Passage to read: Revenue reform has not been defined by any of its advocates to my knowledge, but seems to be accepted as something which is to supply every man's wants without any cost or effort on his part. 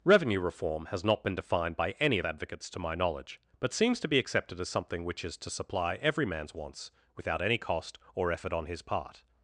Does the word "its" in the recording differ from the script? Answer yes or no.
yes